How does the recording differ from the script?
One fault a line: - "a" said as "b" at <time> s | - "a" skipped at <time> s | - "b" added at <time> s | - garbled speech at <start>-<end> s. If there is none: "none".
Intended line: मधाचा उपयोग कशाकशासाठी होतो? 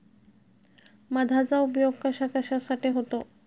none